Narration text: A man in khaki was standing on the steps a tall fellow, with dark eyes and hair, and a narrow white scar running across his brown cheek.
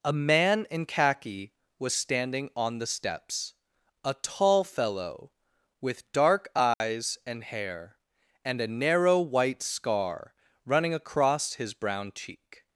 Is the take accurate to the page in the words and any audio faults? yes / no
no